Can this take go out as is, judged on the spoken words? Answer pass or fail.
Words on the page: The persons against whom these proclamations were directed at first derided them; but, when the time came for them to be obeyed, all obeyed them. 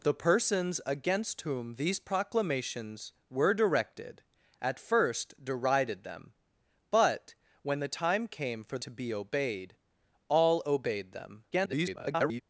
fail